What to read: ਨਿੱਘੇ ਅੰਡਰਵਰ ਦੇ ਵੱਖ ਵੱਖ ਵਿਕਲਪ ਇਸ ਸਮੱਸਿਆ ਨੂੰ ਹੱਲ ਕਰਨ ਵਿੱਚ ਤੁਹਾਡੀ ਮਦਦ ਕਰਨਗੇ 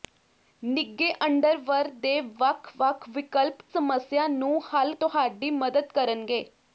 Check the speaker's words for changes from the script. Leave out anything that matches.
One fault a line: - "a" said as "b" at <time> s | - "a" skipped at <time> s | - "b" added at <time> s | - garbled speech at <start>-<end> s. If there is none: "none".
- "ਇਸ" skipped at 3.6 s
- "ਕਰਨ ਵਿੱਚ" skipped at 4.9 s